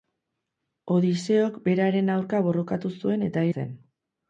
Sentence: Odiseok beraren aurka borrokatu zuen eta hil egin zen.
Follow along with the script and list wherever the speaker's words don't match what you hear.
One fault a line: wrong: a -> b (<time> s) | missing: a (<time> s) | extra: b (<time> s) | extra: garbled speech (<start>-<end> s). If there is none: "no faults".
missing: hil egin (3.5 s)